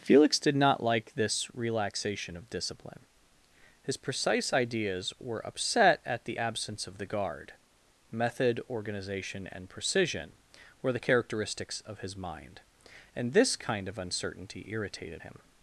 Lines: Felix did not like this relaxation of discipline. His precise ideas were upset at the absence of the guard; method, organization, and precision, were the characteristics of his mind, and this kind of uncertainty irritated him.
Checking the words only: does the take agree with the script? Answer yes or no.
yes